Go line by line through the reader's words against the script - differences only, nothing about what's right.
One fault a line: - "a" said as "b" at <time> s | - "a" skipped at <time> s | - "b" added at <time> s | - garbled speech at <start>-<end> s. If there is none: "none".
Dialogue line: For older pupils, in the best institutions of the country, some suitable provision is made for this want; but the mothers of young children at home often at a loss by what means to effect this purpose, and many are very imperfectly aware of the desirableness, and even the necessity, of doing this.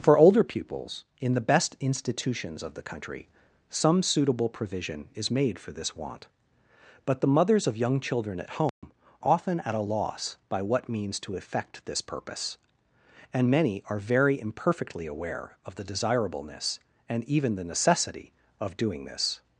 none